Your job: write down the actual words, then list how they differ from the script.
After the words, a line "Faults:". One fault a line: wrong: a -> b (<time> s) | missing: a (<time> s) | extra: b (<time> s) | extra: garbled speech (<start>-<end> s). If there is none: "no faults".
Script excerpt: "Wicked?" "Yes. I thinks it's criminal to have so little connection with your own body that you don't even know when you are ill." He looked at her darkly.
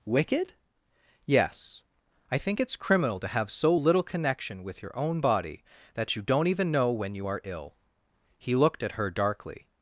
"Wicked?" "Yes. I think it's criminal to have so little connection with your own body that you don't even know when you are ill." He looked at her darkly.
Faults:
wrong: thinks -> think (2.4 s)